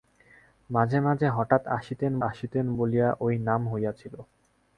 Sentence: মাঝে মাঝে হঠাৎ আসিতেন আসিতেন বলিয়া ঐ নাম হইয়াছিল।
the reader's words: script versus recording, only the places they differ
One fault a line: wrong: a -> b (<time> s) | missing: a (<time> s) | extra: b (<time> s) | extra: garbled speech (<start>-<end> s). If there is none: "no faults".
no faults